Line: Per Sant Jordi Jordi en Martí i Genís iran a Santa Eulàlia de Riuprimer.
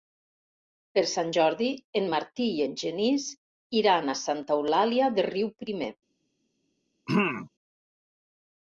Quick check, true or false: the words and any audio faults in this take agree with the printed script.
false